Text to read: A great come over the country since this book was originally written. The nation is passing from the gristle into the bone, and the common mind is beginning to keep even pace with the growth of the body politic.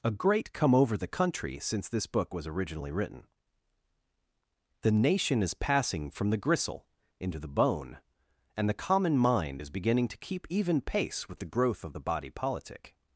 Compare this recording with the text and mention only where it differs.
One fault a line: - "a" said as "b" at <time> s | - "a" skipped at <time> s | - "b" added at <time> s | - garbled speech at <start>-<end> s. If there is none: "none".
none